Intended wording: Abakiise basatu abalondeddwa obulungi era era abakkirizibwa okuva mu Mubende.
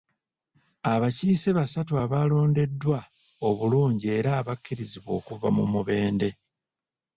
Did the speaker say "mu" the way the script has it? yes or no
yes